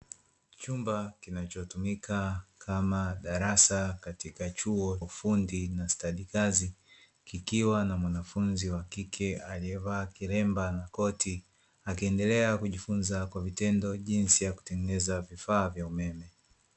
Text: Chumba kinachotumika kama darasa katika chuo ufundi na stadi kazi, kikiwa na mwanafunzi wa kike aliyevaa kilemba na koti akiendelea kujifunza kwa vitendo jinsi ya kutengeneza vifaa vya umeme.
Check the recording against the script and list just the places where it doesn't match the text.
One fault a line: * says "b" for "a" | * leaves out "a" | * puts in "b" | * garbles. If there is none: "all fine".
all fine